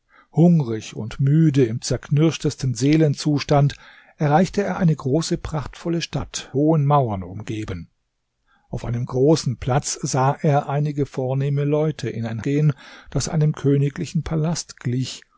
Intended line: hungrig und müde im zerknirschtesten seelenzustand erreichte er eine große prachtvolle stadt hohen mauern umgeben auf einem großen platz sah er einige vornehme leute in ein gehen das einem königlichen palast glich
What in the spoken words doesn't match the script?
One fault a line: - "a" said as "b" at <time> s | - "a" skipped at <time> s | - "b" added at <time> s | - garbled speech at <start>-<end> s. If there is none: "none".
none